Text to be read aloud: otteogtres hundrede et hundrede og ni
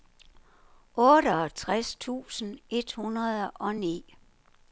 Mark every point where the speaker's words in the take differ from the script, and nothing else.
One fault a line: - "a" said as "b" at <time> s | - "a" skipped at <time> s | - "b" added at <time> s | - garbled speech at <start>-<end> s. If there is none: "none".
- "hundrede" said as "tusind" at 2.0 s